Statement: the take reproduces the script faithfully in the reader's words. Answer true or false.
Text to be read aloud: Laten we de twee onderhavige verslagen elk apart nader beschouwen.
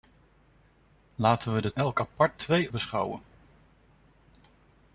false